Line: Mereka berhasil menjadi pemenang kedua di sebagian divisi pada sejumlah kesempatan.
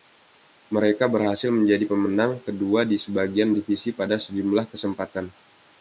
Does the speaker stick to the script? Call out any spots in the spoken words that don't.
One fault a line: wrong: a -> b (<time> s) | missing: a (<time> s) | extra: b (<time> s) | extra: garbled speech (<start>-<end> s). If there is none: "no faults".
no faults